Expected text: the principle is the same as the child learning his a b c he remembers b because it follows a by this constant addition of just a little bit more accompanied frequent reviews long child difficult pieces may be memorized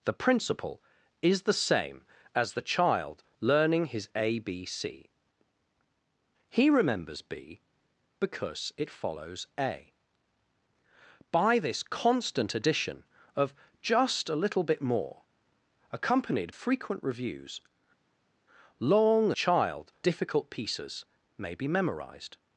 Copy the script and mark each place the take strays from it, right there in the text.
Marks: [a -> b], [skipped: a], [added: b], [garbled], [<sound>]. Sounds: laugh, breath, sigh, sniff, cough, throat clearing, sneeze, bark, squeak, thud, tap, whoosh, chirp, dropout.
the principle is the same as the child learning his a b c he remembers b because it follows a by this constant addition of just a little bit more accompanied frequent reviews long child difficult pieces may be memorized